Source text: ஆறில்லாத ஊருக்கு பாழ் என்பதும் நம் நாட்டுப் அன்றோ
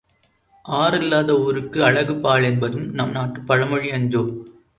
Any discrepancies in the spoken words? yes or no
yes